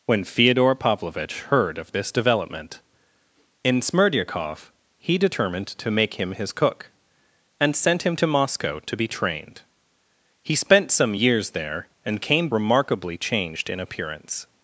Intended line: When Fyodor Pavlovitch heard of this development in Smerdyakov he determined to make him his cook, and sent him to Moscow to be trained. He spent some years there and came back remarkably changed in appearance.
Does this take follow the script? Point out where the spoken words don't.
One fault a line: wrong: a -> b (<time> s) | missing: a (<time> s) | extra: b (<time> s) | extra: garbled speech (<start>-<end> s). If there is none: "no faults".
missing: back (12.5 s)